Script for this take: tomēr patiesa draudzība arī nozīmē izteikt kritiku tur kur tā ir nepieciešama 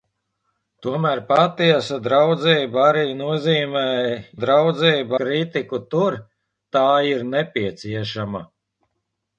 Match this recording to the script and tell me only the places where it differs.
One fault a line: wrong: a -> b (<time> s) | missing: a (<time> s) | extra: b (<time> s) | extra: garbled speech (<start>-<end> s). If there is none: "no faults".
wrong: izteikt -> draudzība (4.4 s)
missing: kur (6.2 s)